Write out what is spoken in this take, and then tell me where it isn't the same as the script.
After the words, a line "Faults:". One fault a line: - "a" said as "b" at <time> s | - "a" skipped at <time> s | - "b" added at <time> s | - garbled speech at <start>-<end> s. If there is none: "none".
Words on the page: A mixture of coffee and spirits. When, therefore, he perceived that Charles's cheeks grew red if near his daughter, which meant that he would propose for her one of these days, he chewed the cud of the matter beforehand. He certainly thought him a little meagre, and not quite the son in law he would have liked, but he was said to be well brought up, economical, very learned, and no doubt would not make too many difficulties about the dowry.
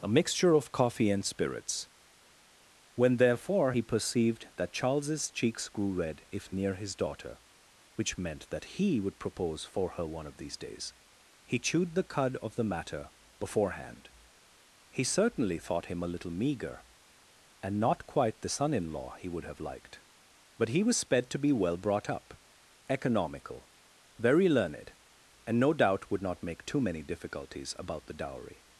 A mixture of coffee and spirits. When, therefore, he perceived that Charles's cheeks grew red if near his daughter, which meant that he would propose for her one of these days, he chewed the cud of the matter beforehand. He certainly thought him a little meagre, and not quite the son in law he would have liked, but he was sped to be well brought up, economical, very learned, and no doubt would not make too many difficulties about the dowry.
Faults:
- "said" said as "sped" at 21.0 s